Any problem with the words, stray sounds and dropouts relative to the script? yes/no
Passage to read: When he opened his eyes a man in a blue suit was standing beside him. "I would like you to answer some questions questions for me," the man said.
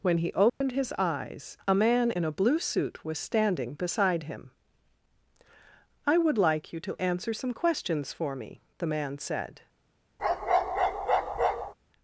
yes